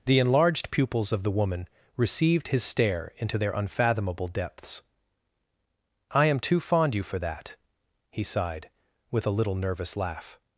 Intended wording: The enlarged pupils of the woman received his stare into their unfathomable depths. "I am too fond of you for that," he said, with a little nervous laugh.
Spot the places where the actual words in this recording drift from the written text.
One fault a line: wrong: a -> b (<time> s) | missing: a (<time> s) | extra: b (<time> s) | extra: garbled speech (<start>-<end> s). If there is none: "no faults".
missing: of (7.0 s)
wrong: said -> sighed (8.2 s)